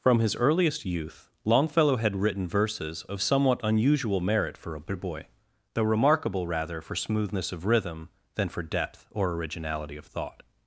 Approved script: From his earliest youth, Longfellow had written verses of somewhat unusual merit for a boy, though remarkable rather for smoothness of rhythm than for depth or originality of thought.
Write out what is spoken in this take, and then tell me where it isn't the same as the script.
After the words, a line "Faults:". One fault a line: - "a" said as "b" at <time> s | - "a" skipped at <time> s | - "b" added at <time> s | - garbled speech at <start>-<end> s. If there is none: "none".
From his earliest youth, Longfellow had written verses of somewhat unusual merit for a boy, though remarkable rather for smoothness of rhythm than for depth or originality of thought.
Faults:
none